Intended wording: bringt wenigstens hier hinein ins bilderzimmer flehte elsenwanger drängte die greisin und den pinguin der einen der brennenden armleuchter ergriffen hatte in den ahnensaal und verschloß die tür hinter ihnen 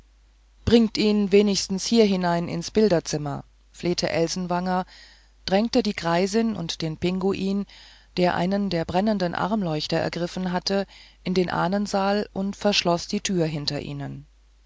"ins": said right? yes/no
yes